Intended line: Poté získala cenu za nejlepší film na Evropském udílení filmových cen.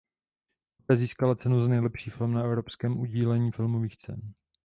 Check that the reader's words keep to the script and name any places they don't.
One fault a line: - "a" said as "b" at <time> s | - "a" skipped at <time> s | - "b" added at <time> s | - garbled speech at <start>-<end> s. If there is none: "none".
none